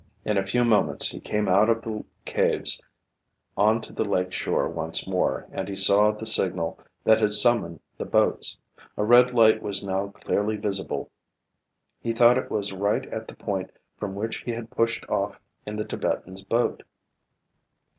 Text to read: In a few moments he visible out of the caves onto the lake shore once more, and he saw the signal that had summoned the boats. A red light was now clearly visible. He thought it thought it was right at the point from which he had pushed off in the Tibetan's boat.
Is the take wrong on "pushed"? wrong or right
right